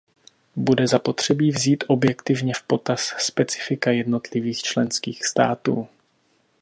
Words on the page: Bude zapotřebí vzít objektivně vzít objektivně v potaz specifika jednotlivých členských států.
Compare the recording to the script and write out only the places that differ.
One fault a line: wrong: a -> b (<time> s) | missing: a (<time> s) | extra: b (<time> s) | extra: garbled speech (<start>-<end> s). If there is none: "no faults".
missing: vzít objektivně (2.5 s)